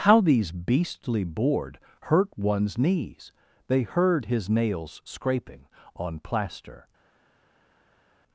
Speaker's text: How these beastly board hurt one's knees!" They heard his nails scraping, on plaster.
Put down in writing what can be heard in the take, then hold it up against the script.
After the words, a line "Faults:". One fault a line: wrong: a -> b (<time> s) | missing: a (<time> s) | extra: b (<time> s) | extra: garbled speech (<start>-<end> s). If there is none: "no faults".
How these beastly board hurt one's knees!" They heard his nails scraping, on plaster.
Faults:
no faults